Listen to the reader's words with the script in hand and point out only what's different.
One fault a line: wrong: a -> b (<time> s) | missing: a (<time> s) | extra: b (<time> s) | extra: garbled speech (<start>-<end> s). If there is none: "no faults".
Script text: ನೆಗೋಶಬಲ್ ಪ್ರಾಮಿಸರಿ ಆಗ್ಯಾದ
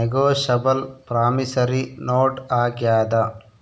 extra: ನೋಟ್ (2.1 s)